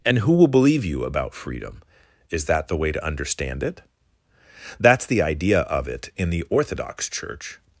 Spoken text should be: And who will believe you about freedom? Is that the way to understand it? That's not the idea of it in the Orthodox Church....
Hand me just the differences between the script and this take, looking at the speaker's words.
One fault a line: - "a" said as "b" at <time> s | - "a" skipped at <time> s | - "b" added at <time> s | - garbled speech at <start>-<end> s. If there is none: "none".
- "not" skipped at 5.0 s